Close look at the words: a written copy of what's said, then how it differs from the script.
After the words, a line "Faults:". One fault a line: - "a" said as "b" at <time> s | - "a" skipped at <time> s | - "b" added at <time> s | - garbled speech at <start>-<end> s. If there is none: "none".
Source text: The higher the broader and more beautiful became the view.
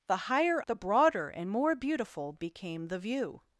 The higher the broader and more beautiful became the view.
Faults:
none